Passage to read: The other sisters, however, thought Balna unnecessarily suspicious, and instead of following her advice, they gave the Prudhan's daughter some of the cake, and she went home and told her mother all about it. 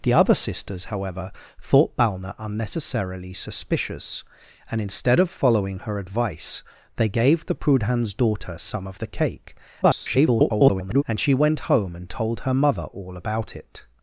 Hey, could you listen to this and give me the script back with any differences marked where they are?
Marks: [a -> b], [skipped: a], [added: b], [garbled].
The other sisters, however, thought Balna unnecessarily suspicious, and instead of following her advice, they gave the Prudhan's daughter some of the cake, [garbled] and she went home and told her mother all about it.